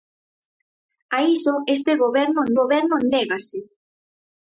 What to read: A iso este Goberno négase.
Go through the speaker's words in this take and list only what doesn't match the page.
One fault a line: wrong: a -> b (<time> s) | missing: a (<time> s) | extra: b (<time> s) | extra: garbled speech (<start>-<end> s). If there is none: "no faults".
extra: Goberno (2.6 s)